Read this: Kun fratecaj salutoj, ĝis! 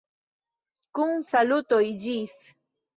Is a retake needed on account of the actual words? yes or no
yes